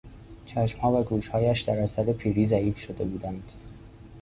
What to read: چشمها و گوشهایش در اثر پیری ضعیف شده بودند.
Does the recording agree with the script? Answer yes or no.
yes